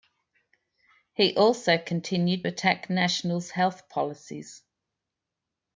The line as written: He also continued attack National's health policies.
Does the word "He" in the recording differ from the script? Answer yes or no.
no